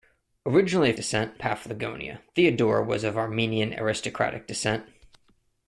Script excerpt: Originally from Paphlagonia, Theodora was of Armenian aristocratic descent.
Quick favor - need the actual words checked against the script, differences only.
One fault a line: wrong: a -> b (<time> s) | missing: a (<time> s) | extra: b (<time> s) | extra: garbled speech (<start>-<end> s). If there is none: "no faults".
wrong: from -> descent (0.9 s)